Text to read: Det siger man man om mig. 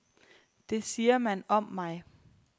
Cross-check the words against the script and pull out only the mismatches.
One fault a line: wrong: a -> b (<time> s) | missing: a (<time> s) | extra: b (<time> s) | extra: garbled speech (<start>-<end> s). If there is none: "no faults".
missing: man (1.4 s)